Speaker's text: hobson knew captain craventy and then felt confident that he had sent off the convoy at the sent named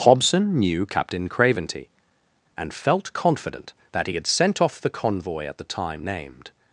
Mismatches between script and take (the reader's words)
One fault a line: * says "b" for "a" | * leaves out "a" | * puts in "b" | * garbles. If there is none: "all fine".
* leaves out "then"
* says "time" for "sent"